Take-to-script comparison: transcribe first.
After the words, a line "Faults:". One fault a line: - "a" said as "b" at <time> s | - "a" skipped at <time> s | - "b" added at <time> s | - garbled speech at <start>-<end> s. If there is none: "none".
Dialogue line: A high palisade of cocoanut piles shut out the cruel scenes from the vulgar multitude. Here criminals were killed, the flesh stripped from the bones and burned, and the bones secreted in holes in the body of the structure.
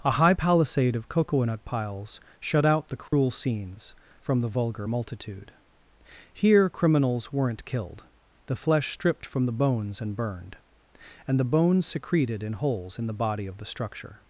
A high palisade of cocoanut piles shut out the cruel scenes from the vulgar multitude. Here criminals weren't killed, the flesh stripped from the bones and burned, and the bones secreted in holes in the body of the structure.
Faults:
- "were" said as "weren't" at 7.3 s